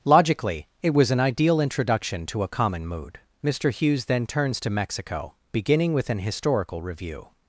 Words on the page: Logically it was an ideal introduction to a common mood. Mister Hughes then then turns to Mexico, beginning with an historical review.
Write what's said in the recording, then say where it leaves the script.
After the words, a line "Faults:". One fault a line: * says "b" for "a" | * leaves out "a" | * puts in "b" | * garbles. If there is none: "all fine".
Logically it was an ideal introduction to a common mood. Mister Hughes then turns to Mexico, beginning with an historical review.
Faults:
* leaves out "then"